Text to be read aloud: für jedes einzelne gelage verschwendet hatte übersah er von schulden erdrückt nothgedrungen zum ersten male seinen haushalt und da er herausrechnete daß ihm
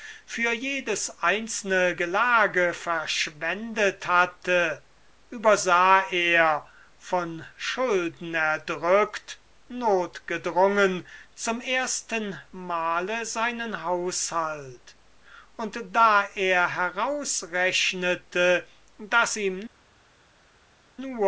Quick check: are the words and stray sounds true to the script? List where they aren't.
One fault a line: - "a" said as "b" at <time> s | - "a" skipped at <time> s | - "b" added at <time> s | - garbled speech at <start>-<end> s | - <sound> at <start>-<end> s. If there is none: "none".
none